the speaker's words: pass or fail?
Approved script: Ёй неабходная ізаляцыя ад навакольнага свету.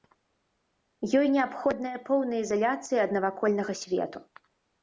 fail